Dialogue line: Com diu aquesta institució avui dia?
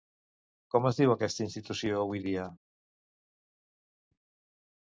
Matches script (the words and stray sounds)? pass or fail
fail